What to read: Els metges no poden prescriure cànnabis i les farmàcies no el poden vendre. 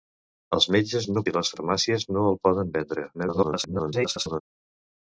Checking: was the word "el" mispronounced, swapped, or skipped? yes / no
no